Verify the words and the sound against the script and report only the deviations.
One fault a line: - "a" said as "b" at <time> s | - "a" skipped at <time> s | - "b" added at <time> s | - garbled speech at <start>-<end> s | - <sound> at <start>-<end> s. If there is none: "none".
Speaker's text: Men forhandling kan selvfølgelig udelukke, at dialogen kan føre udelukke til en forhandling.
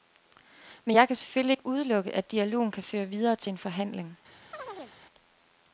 - "forhandling" said as "jeg" at 0.9 s
- "ikke" added at 1.5 s
- "udelukke" said as "videre" at 3.1 s
- chirp at 4.5-5.0 s